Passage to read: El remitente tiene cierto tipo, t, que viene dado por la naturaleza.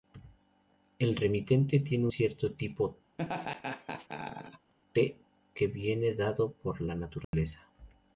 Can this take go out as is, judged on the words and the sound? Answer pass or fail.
fail